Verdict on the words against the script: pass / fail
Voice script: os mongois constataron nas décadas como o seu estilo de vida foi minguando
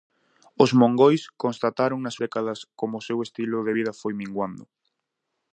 pass